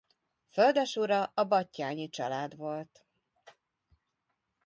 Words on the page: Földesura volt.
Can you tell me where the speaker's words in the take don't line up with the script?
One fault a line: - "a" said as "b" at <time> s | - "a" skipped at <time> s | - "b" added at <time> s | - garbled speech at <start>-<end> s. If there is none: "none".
- "a Batthyány család" added at 1.2 s